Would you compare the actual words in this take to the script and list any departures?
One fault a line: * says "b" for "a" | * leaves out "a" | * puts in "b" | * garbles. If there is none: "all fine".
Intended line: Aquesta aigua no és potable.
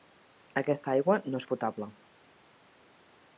all fine